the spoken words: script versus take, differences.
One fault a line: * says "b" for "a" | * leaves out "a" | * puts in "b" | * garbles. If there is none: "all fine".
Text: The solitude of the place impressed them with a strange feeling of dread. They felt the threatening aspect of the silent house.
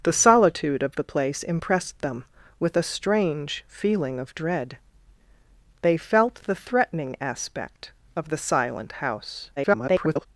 * garbles